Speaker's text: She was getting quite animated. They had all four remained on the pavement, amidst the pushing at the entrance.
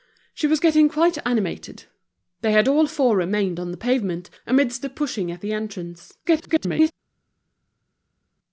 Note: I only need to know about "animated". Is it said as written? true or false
true